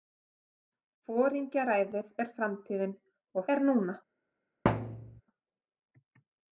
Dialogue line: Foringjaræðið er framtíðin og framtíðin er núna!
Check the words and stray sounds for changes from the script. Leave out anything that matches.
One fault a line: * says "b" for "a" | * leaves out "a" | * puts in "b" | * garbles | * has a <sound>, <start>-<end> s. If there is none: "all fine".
* leaves out "framtíðin"
* has a thud, 4.7-5.2 s